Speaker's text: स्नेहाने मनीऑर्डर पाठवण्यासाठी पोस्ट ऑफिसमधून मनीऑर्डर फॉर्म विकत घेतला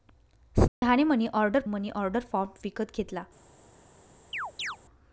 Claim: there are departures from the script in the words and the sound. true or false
true